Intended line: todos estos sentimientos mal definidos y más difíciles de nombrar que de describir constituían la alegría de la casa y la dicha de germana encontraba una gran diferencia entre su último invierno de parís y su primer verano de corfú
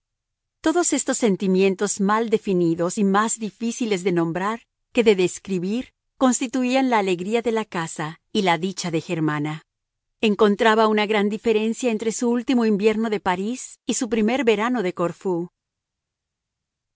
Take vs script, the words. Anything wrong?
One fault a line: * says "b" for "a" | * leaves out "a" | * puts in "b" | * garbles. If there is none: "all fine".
all fine